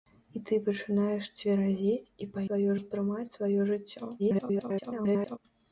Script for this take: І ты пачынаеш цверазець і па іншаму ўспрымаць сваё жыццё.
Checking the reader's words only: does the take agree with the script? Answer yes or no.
no